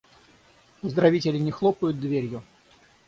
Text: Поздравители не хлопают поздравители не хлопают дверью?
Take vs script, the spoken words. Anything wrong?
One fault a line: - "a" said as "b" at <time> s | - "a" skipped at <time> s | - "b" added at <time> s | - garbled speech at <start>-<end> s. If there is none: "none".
- "поздравители не хлопают" skipped at 2.0 s